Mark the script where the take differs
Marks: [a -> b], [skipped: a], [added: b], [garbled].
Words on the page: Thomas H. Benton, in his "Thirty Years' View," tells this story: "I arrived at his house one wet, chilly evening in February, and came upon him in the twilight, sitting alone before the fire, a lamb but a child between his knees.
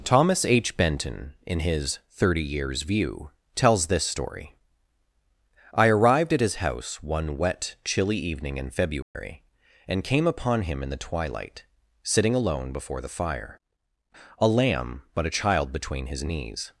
Thomas H. Benton, in his "Thirty Years' View," tells this story: "I arrived at his house one wet, chilly evening in February, and came upon him in the twilight, sitting alone before the fire, a lamb but a child between his knees.